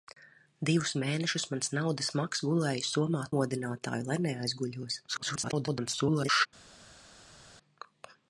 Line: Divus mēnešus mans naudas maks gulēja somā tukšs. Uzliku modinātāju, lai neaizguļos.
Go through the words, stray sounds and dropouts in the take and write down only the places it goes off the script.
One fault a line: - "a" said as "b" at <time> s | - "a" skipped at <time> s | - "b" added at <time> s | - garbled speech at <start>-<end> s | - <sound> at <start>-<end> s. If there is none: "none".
- "tukšs Uzliku" skipped at 3.2 s
- garbled speech at 5.1-6.5 s